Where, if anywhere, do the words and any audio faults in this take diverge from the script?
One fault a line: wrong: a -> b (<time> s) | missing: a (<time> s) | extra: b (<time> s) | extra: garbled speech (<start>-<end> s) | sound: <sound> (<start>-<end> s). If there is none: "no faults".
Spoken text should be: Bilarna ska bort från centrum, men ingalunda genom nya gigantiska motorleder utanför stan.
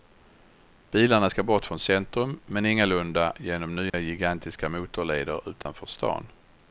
sound: dropout (3.9-3.9 s)
sound: dropout (5.6-5.7 s)